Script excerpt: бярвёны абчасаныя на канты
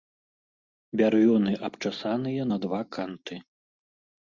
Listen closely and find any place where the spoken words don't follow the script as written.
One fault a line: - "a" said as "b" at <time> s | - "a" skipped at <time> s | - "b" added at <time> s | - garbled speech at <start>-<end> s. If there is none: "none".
- "два" added at 2.7 s